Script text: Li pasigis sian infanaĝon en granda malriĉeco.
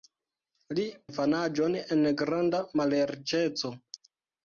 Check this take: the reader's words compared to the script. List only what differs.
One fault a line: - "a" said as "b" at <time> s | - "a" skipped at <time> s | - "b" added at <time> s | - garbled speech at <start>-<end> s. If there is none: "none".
- "pasigis sian" skipped at 0.8 s